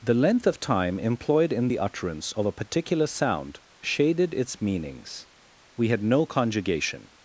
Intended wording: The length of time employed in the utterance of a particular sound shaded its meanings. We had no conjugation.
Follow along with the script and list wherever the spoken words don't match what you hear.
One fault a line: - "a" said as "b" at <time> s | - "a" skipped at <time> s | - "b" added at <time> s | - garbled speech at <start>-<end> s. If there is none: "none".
none